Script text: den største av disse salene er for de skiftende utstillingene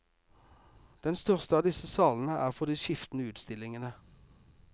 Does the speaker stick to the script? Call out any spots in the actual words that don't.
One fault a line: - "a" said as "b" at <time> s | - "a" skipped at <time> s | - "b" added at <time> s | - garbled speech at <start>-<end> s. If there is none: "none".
none